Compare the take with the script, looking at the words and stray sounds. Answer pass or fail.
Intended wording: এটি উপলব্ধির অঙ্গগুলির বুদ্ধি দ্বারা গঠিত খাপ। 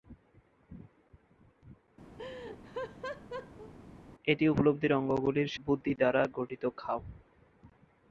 fail